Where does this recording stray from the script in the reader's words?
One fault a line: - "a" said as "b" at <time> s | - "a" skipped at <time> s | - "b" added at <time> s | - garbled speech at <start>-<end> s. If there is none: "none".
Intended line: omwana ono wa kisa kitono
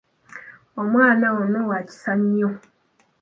- "kitono" said as "nnyo" at 2.2 s